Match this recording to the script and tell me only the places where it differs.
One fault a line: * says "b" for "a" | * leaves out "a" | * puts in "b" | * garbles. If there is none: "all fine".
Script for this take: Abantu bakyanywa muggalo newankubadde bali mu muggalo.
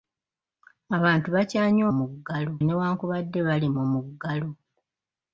all fine